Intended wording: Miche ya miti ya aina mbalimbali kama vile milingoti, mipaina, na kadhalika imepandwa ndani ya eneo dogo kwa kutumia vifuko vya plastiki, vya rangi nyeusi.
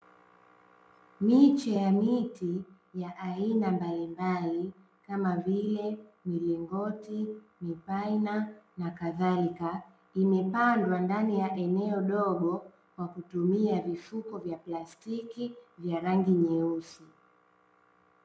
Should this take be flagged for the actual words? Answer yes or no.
no